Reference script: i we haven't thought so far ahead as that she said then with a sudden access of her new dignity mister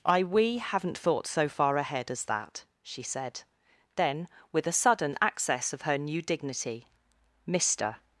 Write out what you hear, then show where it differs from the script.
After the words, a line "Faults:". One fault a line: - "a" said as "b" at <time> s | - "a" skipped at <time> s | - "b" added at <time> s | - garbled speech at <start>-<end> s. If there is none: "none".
i we haven't thought so far ahead as that she said then with a sudden access of her new dignity mister
Faults:
none